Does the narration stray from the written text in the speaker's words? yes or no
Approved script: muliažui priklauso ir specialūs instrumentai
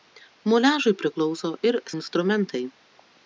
yes